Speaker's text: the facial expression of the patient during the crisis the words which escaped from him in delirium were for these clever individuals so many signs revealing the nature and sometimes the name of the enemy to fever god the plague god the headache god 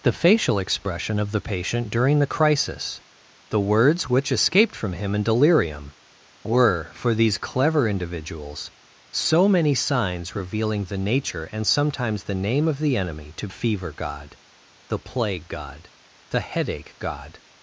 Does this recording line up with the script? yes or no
yes